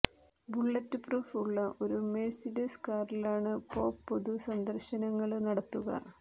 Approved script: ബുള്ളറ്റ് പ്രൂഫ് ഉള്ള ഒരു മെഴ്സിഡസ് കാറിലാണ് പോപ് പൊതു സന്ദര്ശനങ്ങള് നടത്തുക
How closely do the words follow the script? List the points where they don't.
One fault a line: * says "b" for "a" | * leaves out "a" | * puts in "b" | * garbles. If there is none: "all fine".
all fine